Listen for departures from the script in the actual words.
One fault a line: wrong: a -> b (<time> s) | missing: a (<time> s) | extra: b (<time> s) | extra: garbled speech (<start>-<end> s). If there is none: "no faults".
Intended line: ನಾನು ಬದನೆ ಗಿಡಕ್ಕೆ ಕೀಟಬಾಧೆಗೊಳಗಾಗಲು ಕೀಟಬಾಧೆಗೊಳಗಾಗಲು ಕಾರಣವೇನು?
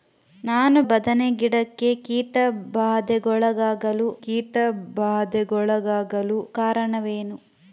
no faults